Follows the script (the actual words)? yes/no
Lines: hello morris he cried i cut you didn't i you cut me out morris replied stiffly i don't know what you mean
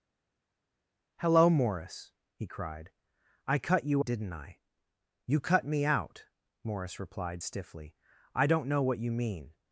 yes